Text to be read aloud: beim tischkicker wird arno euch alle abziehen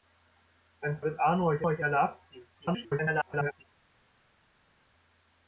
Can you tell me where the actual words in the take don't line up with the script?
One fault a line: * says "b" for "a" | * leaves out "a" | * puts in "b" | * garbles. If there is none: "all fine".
* leaves out "tischkicker"
* puts in "euch"
* garbles